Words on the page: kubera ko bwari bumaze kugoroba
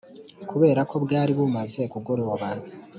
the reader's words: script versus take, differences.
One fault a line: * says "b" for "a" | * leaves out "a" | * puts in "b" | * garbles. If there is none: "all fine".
all fine